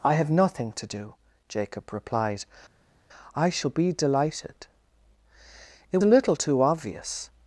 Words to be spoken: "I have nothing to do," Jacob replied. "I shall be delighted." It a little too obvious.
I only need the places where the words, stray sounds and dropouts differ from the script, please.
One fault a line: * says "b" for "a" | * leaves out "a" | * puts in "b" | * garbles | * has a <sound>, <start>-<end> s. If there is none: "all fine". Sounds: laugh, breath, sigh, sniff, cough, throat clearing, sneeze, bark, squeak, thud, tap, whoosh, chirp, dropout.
all fine